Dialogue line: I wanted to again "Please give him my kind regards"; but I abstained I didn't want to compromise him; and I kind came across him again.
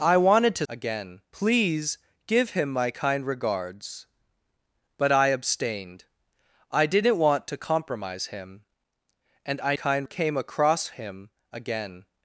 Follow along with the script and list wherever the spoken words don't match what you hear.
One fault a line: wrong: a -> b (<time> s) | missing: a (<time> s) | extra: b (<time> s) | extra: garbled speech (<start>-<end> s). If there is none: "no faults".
no faults